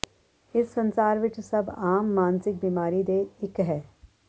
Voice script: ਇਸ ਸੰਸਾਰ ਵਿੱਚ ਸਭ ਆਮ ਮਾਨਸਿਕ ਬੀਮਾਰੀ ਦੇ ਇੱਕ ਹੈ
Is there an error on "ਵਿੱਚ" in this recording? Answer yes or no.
no